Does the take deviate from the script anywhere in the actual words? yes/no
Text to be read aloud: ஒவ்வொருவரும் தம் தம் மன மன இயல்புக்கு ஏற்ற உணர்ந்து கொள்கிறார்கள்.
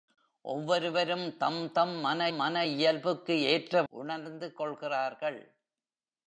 no